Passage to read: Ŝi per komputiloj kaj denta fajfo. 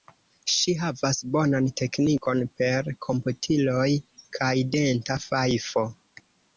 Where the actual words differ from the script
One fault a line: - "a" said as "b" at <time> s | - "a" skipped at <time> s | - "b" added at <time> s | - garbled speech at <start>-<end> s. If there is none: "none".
- "havas bonan teknikon" added at 0.8 s